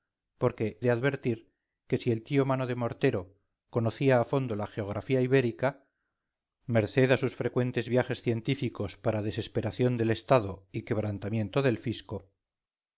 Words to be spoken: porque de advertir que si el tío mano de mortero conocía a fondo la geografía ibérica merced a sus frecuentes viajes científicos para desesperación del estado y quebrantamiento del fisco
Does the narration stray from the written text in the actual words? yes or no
no